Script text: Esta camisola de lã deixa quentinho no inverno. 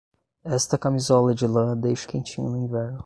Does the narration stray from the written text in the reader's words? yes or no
no